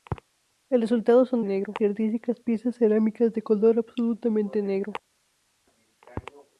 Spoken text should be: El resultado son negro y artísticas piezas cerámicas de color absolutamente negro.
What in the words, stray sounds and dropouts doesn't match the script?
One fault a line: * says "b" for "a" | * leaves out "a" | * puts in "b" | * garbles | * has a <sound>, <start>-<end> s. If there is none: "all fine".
all fine